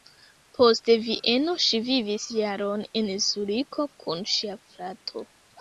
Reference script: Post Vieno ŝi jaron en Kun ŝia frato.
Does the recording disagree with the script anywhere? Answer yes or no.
yes